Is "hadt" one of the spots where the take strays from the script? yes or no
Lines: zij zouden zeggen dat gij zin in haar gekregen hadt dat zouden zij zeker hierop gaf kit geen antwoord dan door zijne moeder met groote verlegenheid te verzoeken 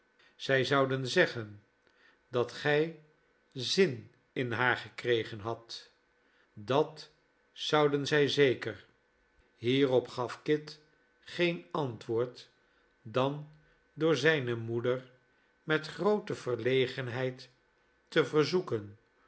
no